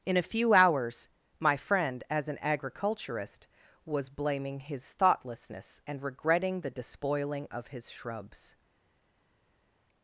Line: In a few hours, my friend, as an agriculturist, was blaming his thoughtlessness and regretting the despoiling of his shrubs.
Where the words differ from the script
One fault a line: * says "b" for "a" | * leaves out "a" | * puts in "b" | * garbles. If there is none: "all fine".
all fine